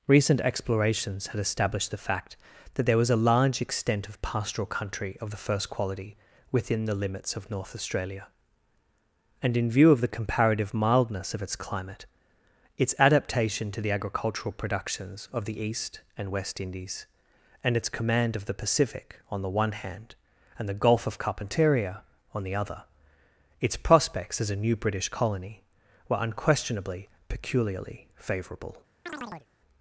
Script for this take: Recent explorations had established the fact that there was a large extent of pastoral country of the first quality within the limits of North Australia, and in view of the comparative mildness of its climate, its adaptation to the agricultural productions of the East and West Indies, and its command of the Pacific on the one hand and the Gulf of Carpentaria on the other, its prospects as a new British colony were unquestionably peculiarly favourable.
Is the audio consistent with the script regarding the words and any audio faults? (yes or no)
no